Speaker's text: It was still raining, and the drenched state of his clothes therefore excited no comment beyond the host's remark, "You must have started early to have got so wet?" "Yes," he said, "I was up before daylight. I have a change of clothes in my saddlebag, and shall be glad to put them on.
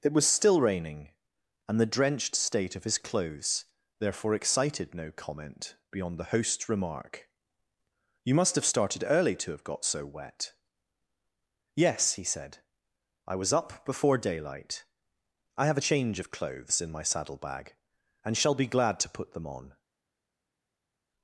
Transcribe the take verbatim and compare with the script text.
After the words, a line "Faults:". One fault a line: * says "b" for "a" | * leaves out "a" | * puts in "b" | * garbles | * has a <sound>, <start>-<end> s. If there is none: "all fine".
It was still raining, and the drenched state of his clothes therefore excited no comment beyond the host's remark, "You must have started early to have got so wet?" "Yes," he said, "I was up before daylight. I have a change of clothes in my saddlebag, and shall be glad to put them on.
Faults:
all fine